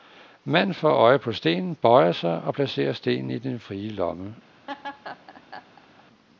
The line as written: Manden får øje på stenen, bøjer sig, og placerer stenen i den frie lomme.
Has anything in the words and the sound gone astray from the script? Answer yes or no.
yes